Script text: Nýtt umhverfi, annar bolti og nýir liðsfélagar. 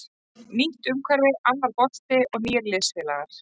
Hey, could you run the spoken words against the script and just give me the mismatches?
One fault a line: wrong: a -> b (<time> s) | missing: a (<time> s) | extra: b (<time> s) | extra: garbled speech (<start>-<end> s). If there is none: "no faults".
no faults